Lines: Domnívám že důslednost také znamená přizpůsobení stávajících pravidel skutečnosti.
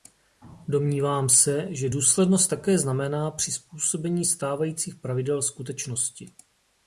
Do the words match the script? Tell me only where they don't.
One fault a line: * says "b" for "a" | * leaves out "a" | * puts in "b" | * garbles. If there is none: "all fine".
* puts in "se"